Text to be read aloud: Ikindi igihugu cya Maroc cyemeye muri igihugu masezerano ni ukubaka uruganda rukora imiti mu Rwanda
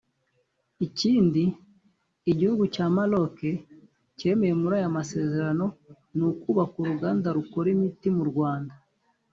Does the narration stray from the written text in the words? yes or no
yes